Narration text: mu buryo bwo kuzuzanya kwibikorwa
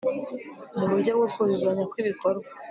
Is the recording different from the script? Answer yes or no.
no